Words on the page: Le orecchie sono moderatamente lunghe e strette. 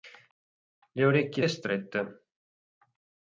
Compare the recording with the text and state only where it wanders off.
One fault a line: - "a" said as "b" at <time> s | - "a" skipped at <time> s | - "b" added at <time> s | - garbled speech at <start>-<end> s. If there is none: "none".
- "sono moderatamente lunghe" skipped at 1.4 s